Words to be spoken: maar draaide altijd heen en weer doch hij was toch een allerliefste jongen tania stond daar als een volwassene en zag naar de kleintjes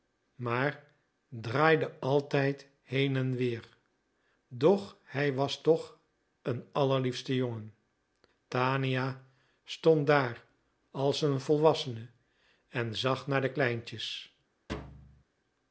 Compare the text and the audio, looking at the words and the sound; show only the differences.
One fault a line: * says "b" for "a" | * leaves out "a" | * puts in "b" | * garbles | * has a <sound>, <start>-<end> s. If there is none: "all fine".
* has a thud, 14.7-15.2 s